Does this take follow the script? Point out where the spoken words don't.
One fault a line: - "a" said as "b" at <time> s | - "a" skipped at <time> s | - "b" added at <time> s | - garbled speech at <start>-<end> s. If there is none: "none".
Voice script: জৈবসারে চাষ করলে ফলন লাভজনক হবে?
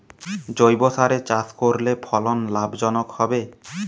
none